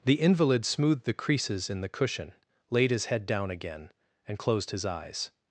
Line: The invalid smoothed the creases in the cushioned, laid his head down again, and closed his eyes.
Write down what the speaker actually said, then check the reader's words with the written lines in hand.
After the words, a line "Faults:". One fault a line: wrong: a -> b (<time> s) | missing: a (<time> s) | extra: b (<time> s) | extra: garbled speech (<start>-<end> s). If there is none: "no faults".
The invalid smoothed the creases in the cushion, laid his head down again, and closed his eyes.
Faults:
wrong: cushioned -> cushion (1.9 s)